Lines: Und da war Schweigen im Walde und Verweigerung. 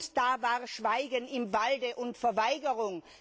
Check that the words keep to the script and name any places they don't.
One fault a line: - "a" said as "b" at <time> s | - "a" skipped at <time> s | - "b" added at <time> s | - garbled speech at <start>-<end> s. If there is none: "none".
none